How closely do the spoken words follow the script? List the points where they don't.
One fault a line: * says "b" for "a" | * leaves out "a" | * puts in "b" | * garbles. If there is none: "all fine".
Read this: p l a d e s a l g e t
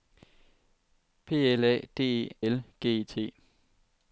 * leaves out "s a"